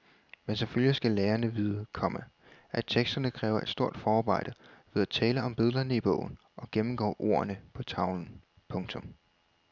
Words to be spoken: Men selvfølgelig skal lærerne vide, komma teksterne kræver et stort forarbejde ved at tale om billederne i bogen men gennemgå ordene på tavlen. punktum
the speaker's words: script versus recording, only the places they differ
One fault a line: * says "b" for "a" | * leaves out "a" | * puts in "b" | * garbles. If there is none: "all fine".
* puts in "at"
* says "og" for "men"